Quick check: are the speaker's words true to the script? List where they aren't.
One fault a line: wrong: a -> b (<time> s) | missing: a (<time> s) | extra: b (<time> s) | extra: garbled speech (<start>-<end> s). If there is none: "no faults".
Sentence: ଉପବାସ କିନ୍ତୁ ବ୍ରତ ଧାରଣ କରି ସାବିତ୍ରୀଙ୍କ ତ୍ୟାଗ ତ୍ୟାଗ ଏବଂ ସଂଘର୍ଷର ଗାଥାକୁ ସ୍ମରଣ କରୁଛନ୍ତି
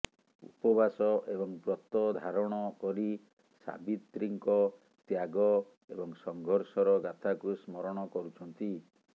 wrong: କିନ୍ତୁ -> ଏବଂ (1.3 s)
missing: ତ୍ୟାଗ (5.5 s)